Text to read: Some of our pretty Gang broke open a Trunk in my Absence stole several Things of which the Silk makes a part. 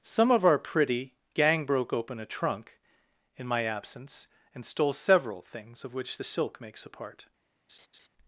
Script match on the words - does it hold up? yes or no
no